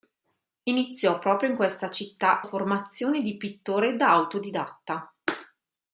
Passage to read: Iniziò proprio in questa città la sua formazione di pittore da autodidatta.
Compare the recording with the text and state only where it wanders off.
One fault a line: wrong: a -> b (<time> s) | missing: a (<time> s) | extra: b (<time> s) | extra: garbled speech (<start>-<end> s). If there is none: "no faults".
missing: la sua (2.4 s)